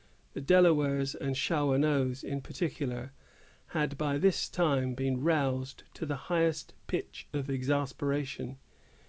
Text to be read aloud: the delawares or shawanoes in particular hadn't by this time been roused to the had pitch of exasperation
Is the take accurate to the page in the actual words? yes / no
no